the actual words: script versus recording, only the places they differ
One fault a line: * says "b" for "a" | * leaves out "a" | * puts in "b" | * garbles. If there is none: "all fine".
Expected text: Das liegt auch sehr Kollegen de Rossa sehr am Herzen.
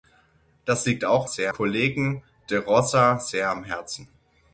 all fine